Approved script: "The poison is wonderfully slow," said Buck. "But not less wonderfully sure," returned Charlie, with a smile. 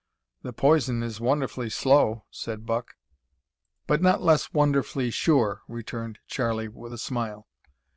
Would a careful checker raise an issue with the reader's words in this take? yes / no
no